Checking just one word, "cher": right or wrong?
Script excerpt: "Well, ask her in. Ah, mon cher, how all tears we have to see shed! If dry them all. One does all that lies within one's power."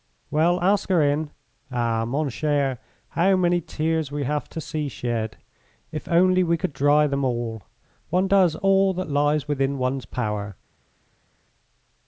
right